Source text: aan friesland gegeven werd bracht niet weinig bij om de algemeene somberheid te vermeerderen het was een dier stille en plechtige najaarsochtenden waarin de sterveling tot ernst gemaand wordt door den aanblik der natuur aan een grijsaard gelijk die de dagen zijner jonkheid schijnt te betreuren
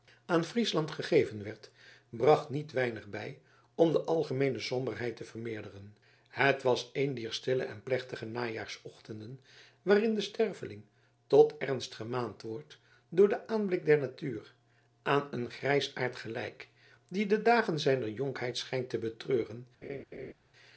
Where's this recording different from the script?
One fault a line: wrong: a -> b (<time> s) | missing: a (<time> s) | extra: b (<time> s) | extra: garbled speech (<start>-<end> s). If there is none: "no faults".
no faults